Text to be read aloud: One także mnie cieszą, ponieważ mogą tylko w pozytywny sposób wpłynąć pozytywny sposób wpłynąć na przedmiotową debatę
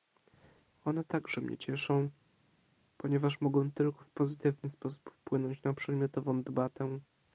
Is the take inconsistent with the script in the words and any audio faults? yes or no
yes